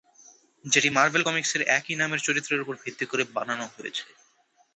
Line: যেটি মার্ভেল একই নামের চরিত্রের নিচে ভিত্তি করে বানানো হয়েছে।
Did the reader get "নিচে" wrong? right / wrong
wrong